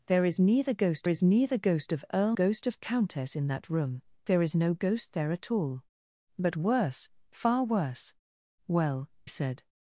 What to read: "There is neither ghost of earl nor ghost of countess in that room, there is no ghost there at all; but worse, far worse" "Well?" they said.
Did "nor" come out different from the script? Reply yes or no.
yes